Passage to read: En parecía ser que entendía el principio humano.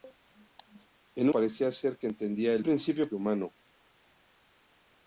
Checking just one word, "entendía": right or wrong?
right